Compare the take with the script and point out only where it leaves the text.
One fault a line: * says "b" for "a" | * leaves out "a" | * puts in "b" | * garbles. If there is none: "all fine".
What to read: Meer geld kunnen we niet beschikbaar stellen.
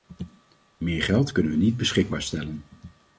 all fine